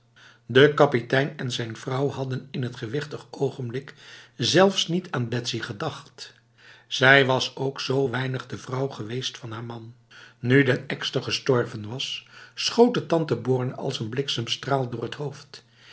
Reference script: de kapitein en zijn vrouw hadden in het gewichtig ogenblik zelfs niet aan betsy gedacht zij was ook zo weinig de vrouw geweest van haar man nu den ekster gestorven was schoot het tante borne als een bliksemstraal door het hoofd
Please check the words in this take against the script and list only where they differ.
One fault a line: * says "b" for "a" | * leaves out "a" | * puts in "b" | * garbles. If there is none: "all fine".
all fine